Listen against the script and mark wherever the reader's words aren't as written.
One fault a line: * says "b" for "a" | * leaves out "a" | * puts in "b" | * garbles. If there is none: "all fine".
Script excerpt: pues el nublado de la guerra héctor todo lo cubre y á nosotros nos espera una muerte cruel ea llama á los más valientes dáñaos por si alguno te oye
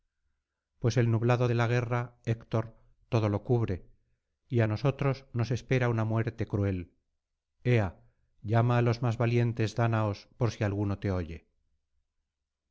all fine